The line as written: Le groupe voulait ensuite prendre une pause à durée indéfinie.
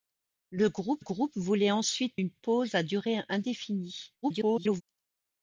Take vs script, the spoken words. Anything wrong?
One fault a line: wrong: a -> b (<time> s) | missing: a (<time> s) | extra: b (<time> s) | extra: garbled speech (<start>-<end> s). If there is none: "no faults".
extra: groupe (1.0 s)
missing: prendre (2.2 s)
extra: garbled speech (4.2-4.8 s)